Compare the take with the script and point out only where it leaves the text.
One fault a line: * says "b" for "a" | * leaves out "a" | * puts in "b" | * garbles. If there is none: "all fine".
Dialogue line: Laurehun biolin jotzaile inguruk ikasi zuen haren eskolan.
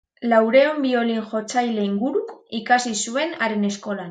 all fine